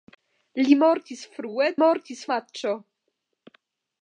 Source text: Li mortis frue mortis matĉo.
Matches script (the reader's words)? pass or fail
pass